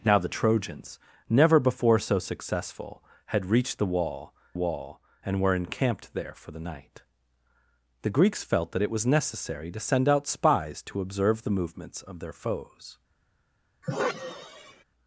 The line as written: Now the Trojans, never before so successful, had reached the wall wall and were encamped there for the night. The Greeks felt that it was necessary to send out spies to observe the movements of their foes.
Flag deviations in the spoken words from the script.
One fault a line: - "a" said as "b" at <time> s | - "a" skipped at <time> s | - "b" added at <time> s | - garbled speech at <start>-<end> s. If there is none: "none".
none